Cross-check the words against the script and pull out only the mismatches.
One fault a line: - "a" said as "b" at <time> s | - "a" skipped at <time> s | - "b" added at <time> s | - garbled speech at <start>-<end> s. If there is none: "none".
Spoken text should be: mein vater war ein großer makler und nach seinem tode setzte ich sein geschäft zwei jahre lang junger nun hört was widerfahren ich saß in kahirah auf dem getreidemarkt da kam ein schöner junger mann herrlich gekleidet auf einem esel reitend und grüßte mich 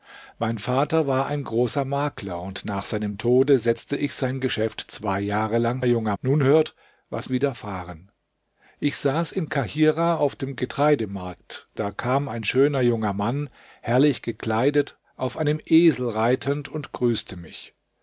none